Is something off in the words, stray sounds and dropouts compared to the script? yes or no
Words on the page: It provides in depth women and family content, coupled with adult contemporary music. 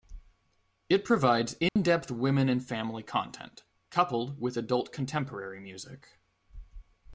yes